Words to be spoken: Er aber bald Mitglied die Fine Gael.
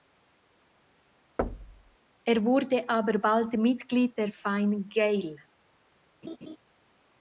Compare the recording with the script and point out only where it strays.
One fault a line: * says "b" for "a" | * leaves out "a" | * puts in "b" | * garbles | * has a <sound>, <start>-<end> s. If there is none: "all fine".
* has a thud, 1.4-2.0 s
* puts in "wurde"
* says "der" for "die"
* has a laugh, 6.2-6.6 s